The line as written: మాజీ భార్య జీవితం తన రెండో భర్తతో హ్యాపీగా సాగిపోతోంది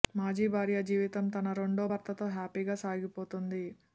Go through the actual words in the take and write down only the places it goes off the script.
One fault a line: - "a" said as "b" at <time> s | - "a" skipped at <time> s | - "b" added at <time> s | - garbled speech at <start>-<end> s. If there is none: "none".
none